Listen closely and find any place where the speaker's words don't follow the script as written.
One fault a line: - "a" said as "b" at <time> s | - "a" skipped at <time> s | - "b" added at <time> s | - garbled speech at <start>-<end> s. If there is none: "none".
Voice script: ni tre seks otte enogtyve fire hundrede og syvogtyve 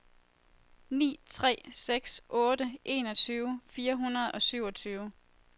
none